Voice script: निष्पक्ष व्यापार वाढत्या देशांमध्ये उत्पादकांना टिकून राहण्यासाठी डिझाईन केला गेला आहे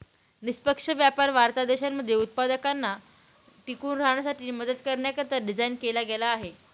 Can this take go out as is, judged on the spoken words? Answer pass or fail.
fail